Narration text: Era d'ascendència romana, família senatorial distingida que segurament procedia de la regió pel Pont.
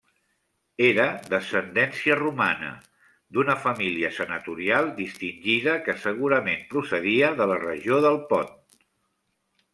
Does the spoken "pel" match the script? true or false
false